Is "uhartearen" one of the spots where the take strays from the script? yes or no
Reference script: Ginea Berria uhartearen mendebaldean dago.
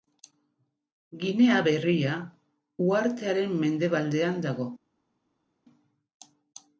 no